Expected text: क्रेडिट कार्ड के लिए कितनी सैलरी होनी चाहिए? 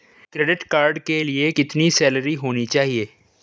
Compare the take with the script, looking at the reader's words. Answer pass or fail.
pass